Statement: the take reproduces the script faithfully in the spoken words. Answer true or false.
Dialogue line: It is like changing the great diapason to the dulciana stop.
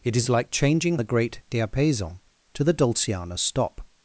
true